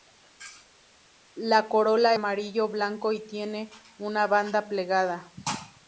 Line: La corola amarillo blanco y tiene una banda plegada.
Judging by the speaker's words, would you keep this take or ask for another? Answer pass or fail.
pass